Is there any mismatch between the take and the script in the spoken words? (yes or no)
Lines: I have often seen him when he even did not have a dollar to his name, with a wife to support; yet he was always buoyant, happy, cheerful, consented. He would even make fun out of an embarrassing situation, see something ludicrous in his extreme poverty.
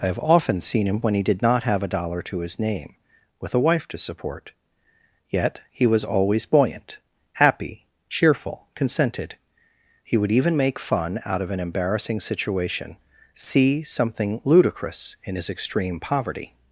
yes